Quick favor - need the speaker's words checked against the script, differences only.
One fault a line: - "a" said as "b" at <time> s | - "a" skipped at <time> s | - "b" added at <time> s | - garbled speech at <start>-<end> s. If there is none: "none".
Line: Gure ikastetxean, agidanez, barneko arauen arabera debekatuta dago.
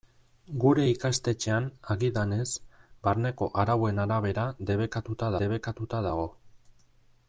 - "debekatuta" added at 5.4 s